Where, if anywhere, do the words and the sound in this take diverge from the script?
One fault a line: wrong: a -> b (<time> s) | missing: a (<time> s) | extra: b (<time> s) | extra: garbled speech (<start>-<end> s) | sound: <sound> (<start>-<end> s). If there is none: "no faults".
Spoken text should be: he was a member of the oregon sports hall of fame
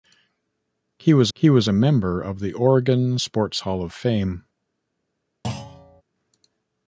extra: he was (1.3 s)
sound: thud (5.4-6.0 s)